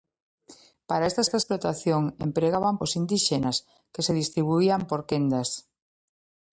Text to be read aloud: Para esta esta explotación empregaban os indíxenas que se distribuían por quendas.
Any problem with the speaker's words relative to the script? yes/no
no